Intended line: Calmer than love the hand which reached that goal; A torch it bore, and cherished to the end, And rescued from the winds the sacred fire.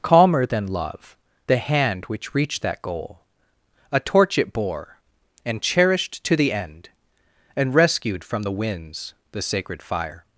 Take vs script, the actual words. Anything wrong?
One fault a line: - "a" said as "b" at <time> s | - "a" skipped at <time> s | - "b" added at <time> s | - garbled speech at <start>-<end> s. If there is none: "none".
none